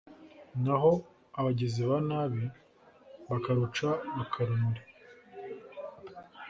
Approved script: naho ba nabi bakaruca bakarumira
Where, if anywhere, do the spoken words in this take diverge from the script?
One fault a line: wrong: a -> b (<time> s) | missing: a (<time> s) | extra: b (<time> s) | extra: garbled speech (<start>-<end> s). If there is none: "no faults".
extra: abagizi (1.4 s)